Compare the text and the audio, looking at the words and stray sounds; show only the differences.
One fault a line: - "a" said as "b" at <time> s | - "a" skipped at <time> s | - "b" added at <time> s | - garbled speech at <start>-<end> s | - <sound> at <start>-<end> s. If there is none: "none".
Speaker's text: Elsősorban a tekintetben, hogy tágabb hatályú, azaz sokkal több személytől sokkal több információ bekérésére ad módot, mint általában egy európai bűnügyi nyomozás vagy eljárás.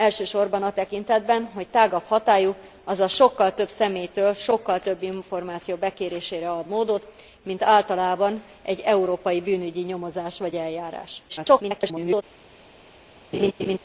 - garbled speech at 11.3-12.2 s
- laugh at 13.3-13.8 s